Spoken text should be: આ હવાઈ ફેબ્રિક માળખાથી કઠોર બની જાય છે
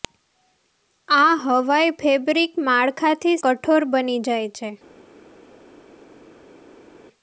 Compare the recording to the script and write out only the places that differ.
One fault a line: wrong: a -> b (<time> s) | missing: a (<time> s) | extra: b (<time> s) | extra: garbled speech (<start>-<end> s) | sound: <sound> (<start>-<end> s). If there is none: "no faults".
no faults